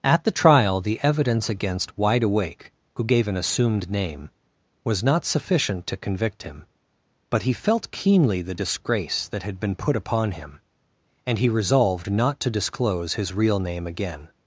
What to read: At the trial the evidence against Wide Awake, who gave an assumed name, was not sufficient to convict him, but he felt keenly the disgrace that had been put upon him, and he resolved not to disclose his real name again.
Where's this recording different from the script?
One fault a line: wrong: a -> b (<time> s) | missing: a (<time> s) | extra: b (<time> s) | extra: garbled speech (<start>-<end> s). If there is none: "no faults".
no faults